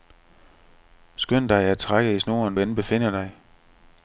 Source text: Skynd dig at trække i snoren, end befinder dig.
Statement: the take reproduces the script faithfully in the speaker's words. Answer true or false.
true